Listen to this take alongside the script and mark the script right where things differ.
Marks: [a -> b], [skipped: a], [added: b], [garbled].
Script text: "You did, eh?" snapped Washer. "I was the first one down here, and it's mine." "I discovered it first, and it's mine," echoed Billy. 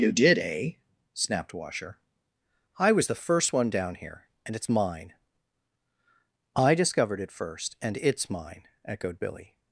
"You did, eh?" snapped Washer. "I was the first one down here, and it's mine." "I discovered it first, and it's mine," echoed Billy.